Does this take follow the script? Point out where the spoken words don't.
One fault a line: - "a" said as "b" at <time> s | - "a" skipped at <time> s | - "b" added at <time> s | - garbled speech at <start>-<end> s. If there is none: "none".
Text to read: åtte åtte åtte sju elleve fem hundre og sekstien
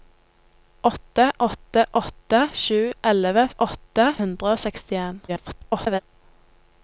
- "fem" said as "åtte" at 3.6 s
- garbled speech at 5.3-6.0 s